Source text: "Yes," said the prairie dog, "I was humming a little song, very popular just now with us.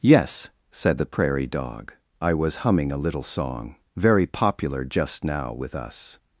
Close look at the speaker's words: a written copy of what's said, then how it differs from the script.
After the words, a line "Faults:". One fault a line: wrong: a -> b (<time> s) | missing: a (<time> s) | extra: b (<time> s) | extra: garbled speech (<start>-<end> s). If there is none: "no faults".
"Yes," said the prairie dog, "I was humming a little song, very popular just now with us.
Faults:
no faults